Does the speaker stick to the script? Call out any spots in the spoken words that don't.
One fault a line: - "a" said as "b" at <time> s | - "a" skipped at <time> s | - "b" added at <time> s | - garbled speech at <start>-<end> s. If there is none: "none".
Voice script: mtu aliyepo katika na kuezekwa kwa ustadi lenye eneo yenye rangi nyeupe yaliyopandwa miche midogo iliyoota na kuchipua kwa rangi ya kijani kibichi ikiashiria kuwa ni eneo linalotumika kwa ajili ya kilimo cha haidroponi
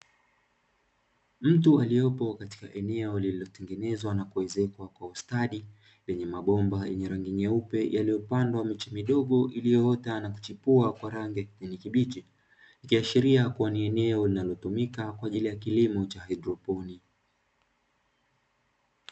- "eneo lililotengenezwa" added at 2.7 s
- "eneo" said as "mabomba" at 6.2 s